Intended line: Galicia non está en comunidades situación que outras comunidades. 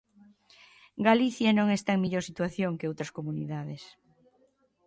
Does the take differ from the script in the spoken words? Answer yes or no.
yes